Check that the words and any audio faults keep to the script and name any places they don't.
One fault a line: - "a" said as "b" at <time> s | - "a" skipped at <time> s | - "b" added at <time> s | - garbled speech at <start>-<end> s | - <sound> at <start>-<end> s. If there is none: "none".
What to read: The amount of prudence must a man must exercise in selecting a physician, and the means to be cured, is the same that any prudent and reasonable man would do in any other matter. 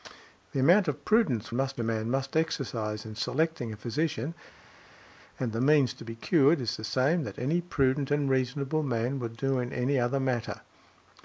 none